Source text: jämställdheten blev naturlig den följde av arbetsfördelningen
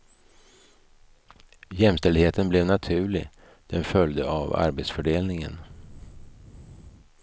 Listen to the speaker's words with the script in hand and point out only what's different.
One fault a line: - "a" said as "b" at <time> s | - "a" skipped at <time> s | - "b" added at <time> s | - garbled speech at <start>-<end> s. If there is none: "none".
none